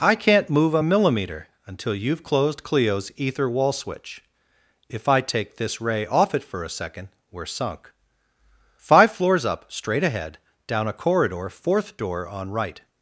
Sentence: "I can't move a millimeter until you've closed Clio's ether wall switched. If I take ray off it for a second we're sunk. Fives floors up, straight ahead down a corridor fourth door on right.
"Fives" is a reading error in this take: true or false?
true